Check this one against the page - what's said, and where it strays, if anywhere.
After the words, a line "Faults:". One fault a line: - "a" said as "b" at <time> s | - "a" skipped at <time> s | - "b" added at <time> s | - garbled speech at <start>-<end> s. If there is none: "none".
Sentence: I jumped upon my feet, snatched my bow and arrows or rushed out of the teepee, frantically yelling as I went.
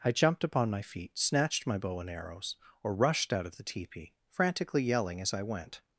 I jumped upon my feet, snatched my bow and arrows or rushed out of the teepee, frantically yelling as I went.
Faults:
none